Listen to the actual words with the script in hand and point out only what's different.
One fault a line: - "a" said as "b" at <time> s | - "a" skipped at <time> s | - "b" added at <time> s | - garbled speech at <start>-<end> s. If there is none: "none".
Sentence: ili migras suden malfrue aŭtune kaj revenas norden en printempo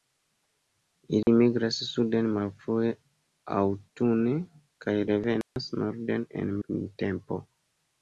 none